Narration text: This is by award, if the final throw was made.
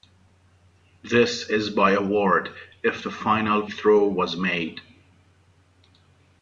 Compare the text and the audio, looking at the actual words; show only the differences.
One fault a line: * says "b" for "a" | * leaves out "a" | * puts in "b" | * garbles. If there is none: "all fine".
all fine